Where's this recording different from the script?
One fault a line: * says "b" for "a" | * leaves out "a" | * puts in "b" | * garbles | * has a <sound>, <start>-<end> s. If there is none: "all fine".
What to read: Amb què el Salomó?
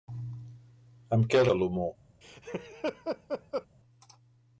* has a laugh, 2.2-3.7 s